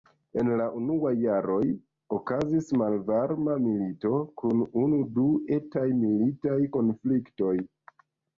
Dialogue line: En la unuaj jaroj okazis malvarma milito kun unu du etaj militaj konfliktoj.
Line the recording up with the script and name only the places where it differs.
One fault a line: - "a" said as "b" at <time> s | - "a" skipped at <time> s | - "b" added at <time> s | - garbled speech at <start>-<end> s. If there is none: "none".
none